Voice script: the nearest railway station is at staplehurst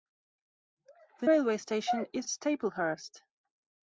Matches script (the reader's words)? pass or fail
fail